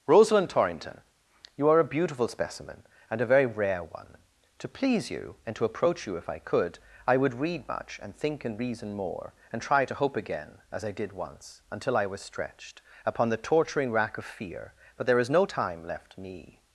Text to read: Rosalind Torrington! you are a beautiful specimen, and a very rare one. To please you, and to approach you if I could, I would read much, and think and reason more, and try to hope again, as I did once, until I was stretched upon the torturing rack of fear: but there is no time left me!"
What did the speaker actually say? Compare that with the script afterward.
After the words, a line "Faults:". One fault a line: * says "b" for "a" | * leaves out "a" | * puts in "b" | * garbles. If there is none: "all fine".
Rosalind Torrington! you are a beautiful specimen, and a very rare one. To please you, and to approach you if I could, I would read much, and think and reason more, and try to hope again, as I did once, until I was stretched upon the torturing rack of fear: but there is no time left me!"
Faults:
all fine